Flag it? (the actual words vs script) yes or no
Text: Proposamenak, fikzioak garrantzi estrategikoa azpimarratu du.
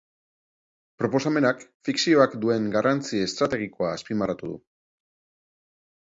yes